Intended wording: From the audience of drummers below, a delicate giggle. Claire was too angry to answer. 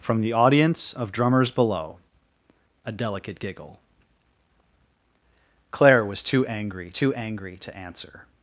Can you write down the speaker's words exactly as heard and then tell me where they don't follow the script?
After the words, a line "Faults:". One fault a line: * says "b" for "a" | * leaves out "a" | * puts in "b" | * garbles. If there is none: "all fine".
From the audience of drummers below, a delicate giggle. Claire was too angry too angry to answer.
Faults:
* puts in "too angry"